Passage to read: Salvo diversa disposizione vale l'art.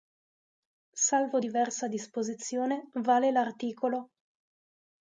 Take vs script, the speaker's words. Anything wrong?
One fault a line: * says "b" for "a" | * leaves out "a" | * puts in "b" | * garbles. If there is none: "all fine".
all fine